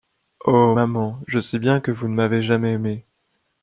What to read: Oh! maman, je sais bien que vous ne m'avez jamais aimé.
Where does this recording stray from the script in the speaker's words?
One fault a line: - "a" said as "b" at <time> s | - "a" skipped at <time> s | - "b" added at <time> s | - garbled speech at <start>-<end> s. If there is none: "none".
none